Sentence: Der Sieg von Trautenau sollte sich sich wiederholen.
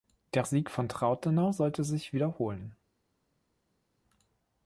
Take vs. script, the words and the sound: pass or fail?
fail